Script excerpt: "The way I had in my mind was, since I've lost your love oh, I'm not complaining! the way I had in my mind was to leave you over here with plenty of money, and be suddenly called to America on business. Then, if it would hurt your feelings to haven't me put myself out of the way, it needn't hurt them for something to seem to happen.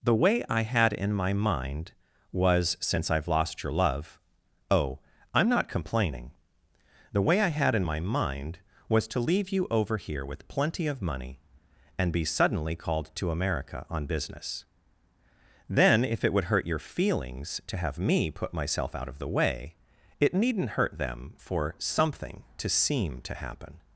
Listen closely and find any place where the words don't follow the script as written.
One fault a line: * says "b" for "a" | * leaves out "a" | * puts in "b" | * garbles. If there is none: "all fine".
* says "have" for "haven't"